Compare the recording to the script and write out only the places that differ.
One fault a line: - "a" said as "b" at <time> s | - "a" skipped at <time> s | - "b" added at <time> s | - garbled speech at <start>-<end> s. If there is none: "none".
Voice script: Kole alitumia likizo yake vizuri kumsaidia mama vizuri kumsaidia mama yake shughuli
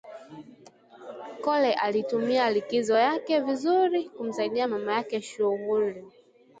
- "vizuri kumsaidia mama" skipped at 4.9 s